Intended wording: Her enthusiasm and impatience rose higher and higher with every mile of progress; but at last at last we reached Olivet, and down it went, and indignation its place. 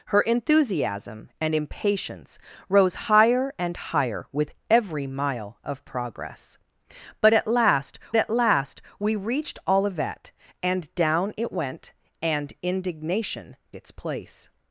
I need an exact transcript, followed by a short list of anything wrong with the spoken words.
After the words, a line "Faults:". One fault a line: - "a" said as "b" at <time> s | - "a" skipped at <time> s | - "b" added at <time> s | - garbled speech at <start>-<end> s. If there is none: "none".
Her enthusiasm and impatience rose higher and higher with every mile of progress; but at last at last we reached Olivet, and down it went, and indignation its place.
Faults:
none